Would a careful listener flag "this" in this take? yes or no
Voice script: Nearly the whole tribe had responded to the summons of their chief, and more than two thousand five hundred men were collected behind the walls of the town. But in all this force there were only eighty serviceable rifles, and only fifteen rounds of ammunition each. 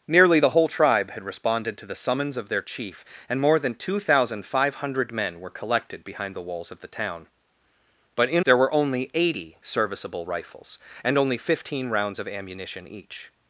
yes